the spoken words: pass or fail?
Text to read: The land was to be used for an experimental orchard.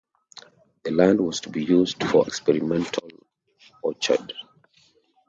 fail